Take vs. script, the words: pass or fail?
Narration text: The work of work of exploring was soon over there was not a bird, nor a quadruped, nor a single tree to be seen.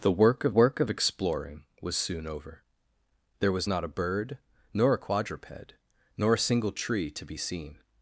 pass